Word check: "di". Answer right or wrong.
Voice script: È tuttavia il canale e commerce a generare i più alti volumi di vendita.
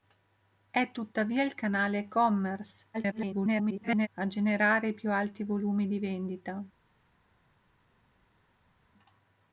right